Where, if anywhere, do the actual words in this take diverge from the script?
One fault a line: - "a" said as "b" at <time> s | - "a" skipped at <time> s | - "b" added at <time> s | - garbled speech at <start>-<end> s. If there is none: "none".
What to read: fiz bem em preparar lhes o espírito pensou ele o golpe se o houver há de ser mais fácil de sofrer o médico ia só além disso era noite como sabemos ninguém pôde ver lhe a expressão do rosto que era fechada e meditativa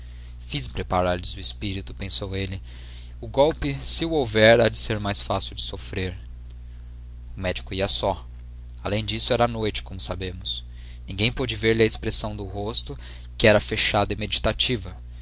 - "bem" skipped at 0.7 s